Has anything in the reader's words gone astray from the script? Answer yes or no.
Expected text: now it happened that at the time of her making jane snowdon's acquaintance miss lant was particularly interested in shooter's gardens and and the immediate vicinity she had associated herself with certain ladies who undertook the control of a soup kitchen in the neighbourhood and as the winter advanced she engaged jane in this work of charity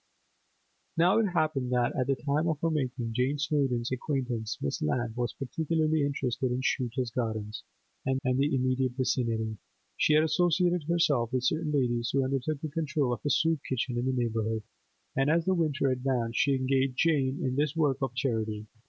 no